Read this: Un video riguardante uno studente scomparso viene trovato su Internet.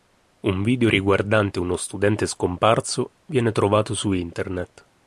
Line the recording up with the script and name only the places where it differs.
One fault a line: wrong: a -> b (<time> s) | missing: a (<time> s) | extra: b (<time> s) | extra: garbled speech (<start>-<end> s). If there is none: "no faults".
no faults